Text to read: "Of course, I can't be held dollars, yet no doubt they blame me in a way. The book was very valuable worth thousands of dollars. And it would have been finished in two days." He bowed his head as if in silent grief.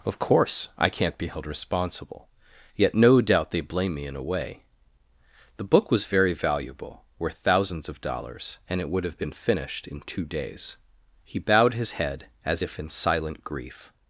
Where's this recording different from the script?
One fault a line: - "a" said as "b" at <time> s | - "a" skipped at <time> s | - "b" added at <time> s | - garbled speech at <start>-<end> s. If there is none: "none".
- "dollars" said as "responsible" at 1.4 s